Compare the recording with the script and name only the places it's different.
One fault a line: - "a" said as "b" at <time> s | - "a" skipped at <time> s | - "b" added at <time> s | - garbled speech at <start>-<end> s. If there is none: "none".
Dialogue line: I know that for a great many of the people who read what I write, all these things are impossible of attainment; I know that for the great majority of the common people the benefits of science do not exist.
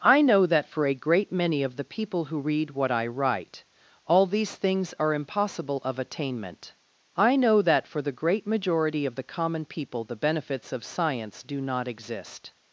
none